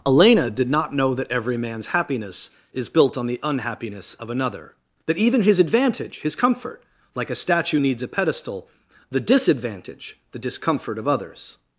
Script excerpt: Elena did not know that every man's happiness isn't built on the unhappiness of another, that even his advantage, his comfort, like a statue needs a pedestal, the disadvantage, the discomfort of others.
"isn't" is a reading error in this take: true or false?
true